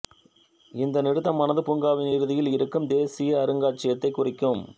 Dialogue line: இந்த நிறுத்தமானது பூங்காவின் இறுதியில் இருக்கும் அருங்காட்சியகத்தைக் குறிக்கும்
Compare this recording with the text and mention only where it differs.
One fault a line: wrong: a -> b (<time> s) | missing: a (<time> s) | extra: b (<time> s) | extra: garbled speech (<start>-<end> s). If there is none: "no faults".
extra: தேசிய (2.9 s)